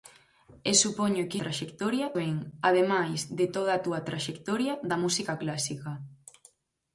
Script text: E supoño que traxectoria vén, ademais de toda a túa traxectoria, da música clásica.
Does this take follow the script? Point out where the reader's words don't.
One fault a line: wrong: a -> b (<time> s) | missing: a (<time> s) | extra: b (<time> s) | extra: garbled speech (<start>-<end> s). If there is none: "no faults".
no faults